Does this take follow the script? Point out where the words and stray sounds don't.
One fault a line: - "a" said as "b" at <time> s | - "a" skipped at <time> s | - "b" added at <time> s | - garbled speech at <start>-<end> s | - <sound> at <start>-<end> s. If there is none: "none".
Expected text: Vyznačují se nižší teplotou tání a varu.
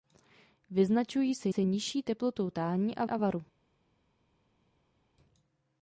- "se" added at 1.5 s
- "a" added at 3.1 s